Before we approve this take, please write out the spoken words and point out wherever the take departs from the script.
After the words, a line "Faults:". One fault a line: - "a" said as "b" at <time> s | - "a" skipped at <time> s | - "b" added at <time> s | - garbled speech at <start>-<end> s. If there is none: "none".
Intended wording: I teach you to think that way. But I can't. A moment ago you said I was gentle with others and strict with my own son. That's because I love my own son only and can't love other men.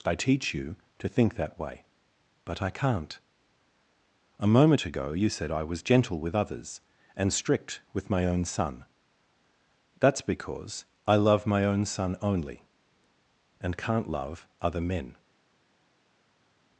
I teach you to think that way. But I can't. A moment ago you said I was gentle with others and strict with my own son. That's because I love my own son only and can't love other men.
Faults:
none